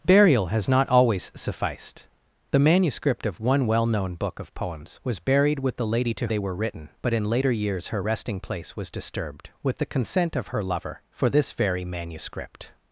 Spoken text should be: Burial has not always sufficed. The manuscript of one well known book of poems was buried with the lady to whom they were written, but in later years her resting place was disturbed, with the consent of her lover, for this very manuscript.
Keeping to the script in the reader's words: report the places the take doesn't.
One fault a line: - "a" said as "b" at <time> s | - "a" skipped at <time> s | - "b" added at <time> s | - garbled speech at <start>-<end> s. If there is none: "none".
- "whom" skipped at 6.3 s